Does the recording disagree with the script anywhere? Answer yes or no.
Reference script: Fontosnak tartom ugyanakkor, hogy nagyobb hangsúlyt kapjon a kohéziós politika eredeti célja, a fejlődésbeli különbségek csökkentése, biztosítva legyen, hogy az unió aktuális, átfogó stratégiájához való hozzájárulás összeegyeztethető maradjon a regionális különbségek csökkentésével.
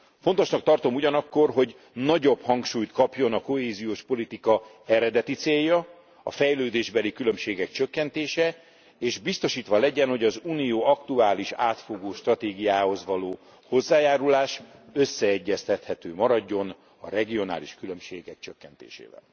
yes